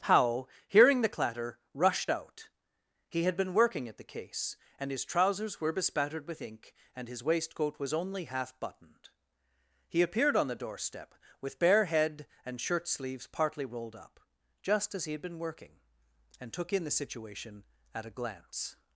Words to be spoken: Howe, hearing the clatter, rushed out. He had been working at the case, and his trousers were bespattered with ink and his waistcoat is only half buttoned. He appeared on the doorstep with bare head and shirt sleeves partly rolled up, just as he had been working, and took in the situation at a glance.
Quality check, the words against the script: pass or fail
fail